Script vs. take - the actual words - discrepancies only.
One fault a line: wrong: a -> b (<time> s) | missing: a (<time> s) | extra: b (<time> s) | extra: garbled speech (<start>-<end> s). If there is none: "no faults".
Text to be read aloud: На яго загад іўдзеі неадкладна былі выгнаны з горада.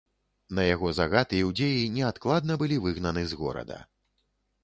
no faults